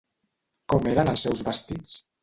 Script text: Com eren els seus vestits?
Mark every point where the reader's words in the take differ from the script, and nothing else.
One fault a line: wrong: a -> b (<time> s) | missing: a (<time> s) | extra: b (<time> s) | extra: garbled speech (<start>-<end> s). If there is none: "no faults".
no faults